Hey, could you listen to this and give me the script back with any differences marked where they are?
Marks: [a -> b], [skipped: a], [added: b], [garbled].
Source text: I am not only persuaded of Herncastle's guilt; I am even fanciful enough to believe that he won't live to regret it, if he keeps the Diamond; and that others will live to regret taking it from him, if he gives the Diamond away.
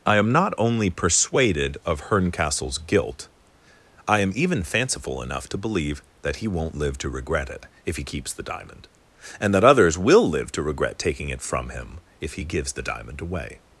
I am not only persuaded of Herncastle's guilt; I am even fanciful enough to believe that he won't live to regret it, if he keeps the Diamond; and that others will live to regret taking it from him, if he gives the Diamond away.